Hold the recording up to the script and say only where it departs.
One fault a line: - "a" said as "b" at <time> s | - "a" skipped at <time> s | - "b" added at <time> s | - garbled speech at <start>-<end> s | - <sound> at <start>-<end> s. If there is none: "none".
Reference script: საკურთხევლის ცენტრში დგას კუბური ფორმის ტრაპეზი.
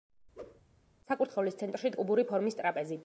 - whoosh at 0.4-0.6 s
- "დგას" skipped at 1.9 s